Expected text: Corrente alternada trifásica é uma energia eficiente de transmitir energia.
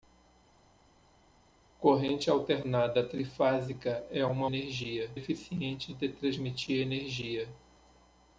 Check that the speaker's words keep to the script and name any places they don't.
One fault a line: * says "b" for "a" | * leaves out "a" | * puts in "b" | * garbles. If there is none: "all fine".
all fine